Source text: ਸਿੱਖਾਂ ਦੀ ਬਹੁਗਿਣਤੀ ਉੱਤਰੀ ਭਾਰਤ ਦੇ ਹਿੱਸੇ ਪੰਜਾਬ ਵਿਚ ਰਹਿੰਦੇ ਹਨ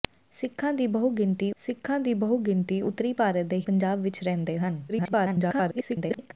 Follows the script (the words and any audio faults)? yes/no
no